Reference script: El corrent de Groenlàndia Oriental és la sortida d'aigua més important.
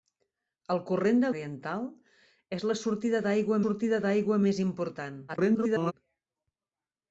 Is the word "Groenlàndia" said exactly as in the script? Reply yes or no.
no